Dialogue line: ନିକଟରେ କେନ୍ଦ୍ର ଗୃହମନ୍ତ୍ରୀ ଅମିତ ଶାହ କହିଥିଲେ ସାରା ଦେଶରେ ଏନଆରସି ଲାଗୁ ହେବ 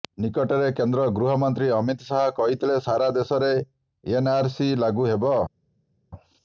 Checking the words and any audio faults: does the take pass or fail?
pass